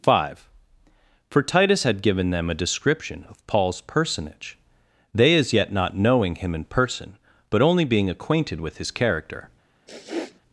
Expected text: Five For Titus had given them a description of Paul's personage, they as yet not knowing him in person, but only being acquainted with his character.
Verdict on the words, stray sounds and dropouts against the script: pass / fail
fail